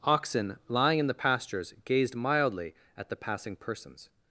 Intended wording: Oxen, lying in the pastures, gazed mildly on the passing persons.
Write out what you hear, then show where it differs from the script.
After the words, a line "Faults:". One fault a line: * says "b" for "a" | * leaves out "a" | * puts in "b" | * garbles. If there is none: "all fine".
Oxen, lying in the pastures, gazed mildly at the passing persons.
Faults:
* says "at" for "on"